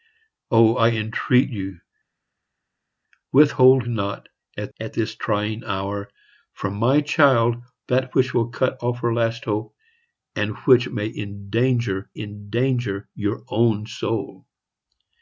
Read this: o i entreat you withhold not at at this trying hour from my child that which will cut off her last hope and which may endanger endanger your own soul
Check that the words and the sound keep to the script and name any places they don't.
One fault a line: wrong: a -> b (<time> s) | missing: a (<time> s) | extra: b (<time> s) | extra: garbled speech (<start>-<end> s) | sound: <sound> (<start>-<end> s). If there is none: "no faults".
no faults